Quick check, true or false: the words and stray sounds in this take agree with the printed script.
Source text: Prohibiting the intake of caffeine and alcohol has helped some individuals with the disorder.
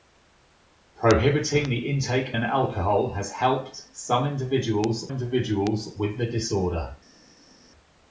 false